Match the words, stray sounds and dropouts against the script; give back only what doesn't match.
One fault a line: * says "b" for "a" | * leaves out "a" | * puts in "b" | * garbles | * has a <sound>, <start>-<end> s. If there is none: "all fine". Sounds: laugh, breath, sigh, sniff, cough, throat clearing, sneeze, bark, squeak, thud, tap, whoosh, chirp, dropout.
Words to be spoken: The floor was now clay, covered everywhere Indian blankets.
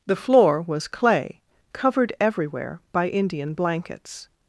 * leaves out "now"
* puts in "by"